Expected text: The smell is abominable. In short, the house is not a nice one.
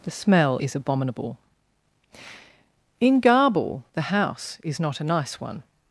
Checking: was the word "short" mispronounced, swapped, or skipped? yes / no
yes